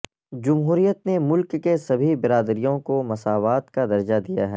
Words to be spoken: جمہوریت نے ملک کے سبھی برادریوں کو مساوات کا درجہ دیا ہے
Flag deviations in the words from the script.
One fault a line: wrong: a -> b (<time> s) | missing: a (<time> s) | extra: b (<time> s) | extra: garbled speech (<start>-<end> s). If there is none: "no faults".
no faults